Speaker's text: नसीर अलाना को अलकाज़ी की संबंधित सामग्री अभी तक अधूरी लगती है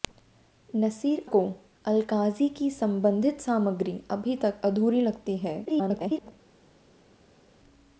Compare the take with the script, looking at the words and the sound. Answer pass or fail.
fail